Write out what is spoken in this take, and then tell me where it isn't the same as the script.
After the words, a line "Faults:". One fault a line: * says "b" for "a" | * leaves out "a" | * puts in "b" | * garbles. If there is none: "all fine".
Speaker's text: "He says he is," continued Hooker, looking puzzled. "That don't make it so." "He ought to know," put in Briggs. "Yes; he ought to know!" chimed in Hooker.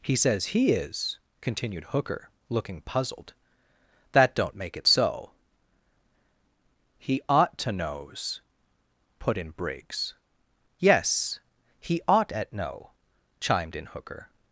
"He says he is," continued Hooker, looking puzzled. "That don't make it so." "He ought to knows," put in Briggs. "Yes; he ought at know!" chimed in Hooker.
Faults:
* says "knows" for "know"
* says "at" for "to"